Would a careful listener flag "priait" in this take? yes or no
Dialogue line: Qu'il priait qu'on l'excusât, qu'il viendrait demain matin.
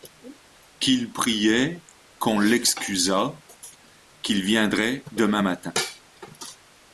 no